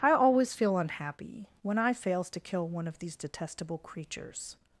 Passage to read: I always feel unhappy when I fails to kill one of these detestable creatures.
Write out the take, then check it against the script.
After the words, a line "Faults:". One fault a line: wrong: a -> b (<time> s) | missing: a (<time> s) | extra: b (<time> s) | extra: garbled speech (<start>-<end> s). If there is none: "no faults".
I always feel unhappy when I fails to kill one of these detestable creatures.
Faults:
no faults